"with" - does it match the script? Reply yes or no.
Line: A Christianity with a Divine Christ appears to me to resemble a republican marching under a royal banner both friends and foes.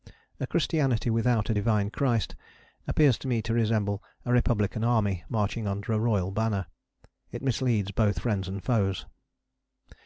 no